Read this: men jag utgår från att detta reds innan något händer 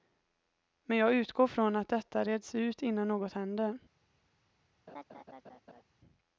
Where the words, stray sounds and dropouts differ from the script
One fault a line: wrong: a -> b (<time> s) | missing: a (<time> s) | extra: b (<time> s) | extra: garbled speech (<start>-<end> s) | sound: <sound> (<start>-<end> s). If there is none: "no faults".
extra: ut (2.5 s)
sound: laugh (4.9-5.8 s)